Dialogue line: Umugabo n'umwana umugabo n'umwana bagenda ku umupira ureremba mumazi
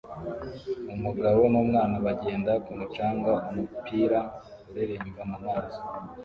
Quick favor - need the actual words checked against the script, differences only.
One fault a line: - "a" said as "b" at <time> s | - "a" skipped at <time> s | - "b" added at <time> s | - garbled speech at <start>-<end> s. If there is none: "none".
- "umugabo n'umwana" skipped at 1.9 s
- "mucanga" added at 2.8 s